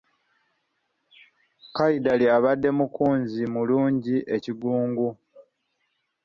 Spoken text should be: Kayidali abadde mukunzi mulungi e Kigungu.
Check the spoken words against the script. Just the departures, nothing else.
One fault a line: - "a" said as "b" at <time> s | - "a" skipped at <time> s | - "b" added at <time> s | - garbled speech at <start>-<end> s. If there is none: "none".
none